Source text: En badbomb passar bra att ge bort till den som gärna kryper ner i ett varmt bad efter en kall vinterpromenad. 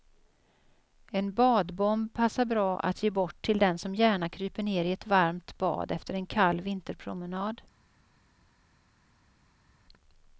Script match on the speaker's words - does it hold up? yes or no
yes